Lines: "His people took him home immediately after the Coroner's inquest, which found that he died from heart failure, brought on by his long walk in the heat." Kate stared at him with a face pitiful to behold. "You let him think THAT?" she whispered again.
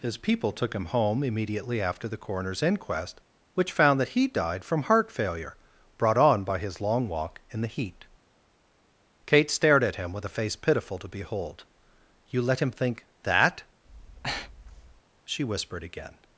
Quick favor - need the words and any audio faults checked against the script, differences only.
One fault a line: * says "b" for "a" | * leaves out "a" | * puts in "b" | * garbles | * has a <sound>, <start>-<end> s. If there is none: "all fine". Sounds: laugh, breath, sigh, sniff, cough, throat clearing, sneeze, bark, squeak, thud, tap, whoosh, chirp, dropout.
* has a breath, 13.8-15.0 s